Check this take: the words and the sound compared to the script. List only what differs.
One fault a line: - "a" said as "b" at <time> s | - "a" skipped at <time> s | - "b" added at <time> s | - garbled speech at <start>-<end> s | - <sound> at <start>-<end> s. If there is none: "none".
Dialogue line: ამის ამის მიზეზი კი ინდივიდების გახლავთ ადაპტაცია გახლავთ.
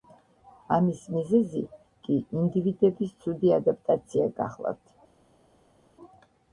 - "ამის" skipped at 1.0 s
- "გახლავთ" said as "ცუდი" at 3.3 s